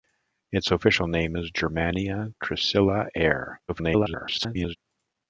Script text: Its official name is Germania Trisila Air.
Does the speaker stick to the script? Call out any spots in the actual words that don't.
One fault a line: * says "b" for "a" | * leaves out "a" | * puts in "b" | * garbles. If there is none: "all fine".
* garbles